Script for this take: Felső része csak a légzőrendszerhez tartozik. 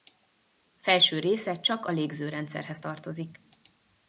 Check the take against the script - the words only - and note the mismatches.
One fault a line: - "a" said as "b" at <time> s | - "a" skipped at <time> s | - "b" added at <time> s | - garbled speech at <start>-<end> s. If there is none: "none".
none